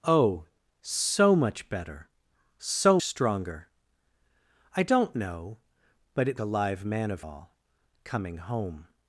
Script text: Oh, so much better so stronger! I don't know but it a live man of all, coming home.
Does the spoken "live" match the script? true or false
true